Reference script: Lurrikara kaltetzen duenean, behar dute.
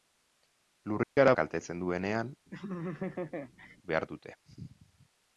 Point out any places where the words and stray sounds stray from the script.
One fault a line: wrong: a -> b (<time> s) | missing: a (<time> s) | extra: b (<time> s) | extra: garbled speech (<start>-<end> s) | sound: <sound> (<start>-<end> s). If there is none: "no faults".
sound: dropout (1.0-1.2 s)
sound: laugh (2.5-3.8 s)